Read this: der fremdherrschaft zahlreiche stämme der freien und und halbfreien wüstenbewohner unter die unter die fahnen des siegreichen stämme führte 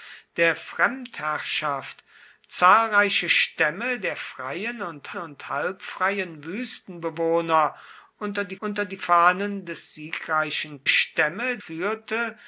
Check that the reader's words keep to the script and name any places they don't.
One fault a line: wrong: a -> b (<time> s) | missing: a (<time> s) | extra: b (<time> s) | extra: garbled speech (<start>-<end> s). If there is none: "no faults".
no faults